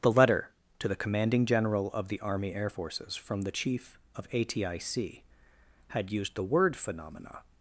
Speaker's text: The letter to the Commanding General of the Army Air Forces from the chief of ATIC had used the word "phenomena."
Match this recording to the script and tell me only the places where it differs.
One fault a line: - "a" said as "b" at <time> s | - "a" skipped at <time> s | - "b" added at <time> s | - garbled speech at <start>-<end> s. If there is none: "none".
none